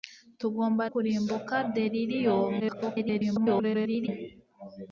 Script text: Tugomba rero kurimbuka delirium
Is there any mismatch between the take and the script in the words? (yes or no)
yes